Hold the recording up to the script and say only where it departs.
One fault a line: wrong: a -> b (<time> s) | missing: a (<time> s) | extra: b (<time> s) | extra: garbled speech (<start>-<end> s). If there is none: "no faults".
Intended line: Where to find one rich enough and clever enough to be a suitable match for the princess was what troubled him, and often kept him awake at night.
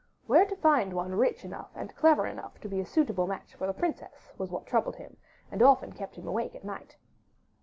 no faults